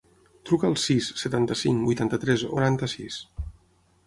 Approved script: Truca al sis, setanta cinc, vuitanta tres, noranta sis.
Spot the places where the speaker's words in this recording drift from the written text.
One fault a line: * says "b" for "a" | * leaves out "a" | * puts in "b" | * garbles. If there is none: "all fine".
all fine